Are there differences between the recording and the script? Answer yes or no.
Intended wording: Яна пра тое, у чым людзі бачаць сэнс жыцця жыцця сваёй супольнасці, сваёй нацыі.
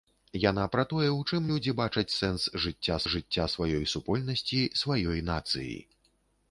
no